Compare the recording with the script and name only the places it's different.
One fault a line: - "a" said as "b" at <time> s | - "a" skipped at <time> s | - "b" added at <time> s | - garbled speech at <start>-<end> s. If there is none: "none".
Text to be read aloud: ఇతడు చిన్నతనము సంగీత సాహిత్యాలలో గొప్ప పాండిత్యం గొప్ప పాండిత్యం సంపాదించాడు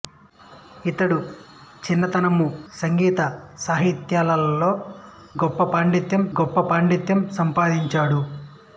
none